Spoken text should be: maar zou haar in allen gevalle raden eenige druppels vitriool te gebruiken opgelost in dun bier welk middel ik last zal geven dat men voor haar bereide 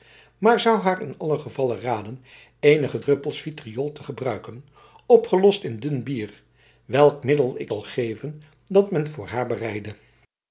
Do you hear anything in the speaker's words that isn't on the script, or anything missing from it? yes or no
yes